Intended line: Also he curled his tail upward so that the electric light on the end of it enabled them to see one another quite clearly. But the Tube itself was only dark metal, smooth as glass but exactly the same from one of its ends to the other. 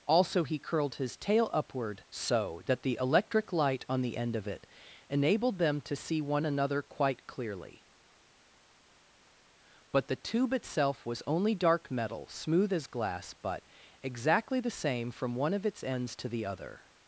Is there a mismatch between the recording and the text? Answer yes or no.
no